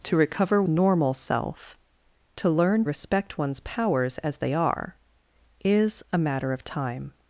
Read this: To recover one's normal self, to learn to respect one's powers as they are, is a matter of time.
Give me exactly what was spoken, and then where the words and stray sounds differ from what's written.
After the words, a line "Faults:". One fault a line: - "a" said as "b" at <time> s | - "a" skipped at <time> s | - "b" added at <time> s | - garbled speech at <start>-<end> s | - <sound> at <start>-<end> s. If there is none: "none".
To recover normal self, to learn respect one's powers as they are, is a matter of time.
Faults:
- "one's" skipped at 0.6 s
- "to" skipped at 2.8 s